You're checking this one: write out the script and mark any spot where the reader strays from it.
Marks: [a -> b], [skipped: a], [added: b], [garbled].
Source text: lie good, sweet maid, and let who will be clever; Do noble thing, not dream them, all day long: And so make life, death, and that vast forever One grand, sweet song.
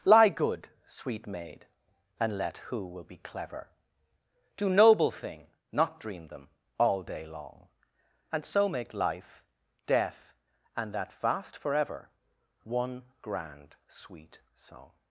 lie good, sweet maid, and let who will be clever; Do noble thing, not dream them, all day long: And so make life, death, and that vast forever One grand, sweet song.